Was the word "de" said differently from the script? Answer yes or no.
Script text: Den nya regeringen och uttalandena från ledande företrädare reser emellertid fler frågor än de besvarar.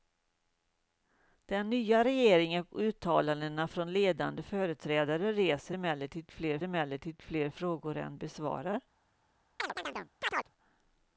yes